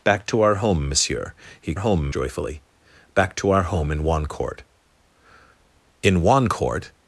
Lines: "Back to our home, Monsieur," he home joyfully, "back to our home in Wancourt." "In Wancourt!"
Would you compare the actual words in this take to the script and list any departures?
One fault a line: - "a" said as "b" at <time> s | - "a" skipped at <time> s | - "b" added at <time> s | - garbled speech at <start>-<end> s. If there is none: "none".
none